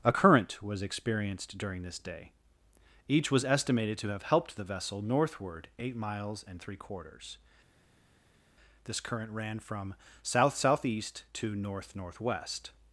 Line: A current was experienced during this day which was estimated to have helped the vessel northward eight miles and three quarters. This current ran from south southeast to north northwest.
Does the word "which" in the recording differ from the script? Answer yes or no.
yes